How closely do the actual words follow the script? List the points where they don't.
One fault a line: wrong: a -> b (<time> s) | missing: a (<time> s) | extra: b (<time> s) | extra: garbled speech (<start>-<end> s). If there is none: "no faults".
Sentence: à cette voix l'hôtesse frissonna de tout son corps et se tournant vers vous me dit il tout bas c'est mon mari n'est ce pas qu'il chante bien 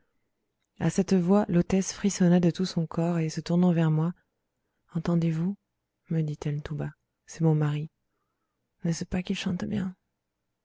extra: moi entendez (3.9 s)
wrong: il -> elle (6.4 s)